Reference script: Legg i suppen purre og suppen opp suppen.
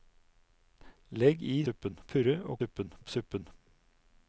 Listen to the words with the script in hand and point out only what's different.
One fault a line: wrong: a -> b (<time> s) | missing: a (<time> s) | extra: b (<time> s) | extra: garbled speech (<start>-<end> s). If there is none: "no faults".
no faults